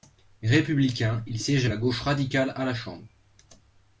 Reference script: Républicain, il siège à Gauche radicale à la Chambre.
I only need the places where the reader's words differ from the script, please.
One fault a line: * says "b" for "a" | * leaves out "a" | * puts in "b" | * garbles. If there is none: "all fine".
* puts in "la"